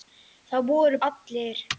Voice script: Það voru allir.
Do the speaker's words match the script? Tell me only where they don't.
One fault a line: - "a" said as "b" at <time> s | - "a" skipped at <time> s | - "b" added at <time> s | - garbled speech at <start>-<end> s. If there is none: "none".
none